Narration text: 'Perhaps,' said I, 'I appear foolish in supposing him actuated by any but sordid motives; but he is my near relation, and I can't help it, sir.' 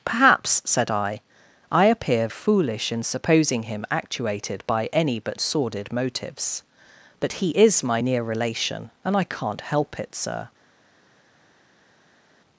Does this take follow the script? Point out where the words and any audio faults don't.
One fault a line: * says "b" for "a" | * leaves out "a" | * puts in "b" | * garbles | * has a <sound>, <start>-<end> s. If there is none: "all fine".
all fine